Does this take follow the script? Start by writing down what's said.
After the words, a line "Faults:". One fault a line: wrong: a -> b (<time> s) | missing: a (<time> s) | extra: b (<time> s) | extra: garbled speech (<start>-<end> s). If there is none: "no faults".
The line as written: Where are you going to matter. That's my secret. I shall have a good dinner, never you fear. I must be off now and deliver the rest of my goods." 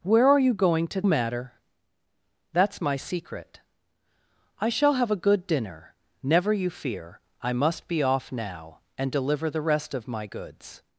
Where are you going to matter. That's my secret. I shall have a good dinner, never you fear. I must be off now and deliver the rest of my goods."
Faults:
no faults